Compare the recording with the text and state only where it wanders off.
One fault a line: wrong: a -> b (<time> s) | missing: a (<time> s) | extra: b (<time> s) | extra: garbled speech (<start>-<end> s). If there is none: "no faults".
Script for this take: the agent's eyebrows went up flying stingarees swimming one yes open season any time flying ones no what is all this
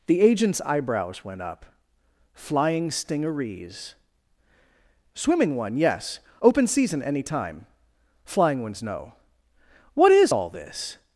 no faults